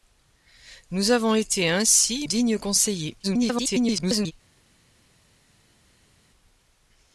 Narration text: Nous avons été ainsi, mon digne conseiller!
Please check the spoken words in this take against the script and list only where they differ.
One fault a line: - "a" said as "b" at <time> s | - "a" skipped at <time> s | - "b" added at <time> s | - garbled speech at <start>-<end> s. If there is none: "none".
- "mon" skipped at 2.3 s
- garbled speech at 3.2-4.3 s